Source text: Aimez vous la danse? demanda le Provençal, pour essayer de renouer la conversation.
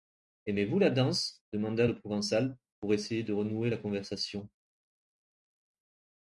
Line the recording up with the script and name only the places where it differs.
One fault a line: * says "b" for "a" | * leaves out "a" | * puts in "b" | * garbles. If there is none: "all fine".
all fine